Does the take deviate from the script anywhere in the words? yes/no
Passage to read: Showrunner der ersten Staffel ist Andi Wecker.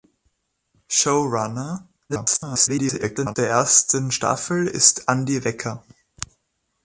yes